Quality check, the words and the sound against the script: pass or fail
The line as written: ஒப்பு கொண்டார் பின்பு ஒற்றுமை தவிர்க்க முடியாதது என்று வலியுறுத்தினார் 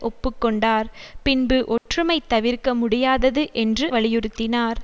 fail